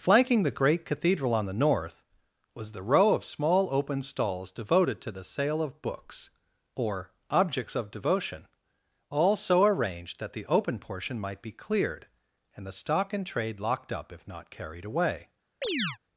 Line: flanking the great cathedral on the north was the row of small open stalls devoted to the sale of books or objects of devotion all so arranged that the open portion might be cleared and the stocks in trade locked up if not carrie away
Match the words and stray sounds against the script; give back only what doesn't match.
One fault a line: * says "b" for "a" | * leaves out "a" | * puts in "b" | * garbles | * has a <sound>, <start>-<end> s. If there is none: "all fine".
* says "stock" for "stocks"
* says "carried" for "carrie"
* has a chirp, 15.6-16.0 s